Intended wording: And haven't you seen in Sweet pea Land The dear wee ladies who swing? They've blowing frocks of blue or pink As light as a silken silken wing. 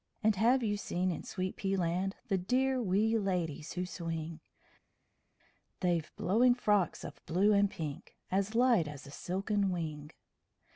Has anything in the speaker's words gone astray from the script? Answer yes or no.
yes